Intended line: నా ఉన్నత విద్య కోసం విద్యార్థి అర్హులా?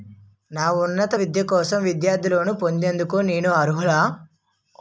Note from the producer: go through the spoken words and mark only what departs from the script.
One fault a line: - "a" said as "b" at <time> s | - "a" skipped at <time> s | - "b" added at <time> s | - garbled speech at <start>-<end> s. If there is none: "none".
- "లోన్ పొందేందుకు నేను" added at 2.3 s